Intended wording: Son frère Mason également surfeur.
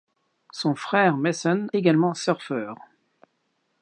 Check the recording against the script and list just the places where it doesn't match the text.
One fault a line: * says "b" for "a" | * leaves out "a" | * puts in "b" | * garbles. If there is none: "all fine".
all fine